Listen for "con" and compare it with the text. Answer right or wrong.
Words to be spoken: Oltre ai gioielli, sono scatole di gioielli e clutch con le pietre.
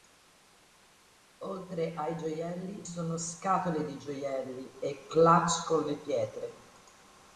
right